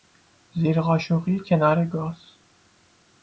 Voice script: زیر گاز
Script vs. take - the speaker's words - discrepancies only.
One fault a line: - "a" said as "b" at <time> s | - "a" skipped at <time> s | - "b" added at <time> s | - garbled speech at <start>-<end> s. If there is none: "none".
- "قاشقی کنار" added at 0.8 s